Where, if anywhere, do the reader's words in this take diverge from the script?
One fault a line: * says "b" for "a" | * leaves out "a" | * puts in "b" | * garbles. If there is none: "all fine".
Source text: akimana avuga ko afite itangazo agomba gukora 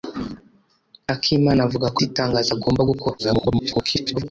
* leaves out "afite"
* garbles